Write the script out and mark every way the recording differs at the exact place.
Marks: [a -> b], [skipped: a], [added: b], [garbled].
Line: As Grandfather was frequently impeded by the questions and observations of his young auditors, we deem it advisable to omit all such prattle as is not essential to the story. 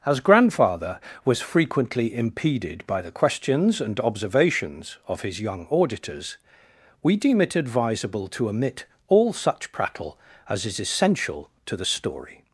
As Grandfather was frequently impeded by the questions and observations of his young auditors, we deem it advisable to omit all such prattle as is [skipped: not] essential to the story.